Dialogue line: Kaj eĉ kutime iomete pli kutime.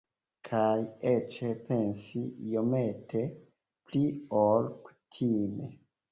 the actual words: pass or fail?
fail